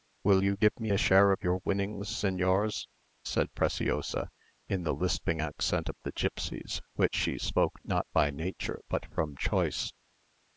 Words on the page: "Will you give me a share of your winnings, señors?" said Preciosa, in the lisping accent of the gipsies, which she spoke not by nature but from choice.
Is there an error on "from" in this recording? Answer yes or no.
no